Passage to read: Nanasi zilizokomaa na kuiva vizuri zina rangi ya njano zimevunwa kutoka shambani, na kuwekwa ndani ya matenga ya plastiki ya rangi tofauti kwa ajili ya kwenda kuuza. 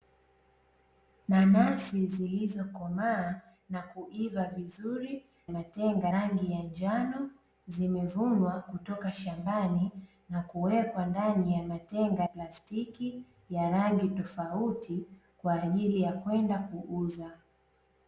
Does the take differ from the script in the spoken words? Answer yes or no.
yes